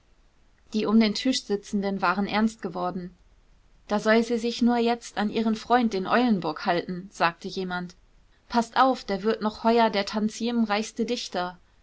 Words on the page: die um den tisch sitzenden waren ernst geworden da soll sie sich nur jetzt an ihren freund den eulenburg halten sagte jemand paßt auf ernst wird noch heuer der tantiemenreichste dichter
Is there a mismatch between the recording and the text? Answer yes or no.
yes